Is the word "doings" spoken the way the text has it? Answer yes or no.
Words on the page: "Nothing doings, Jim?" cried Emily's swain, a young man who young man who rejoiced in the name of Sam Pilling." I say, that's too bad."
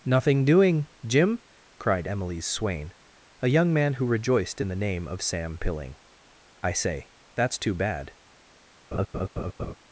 no